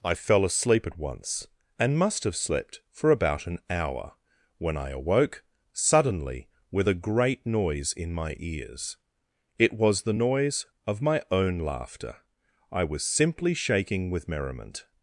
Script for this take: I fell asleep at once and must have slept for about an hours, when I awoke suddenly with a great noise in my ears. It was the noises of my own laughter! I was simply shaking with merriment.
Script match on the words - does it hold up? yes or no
no